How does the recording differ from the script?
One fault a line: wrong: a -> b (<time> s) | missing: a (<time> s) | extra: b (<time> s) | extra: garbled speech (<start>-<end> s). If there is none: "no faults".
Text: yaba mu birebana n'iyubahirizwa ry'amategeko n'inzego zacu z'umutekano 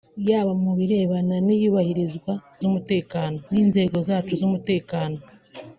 wrong: ry'amategeko -> z'umutekano (2.6 s)